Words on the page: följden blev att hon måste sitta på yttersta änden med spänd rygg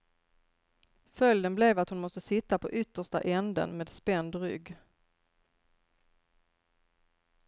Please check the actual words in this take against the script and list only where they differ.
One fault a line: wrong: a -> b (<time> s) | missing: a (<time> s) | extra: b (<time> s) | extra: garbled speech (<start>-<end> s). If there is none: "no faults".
no faults